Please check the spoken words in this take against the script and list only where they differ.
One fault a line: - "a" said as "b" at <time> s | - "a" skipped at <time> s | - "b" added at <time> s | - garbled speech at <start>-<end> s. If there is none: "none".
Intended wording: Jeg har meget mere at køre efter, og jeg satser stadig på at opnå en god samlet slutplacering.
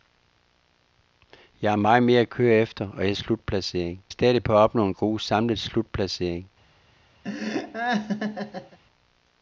- "satser" said as "slutplacering" at 3.1 s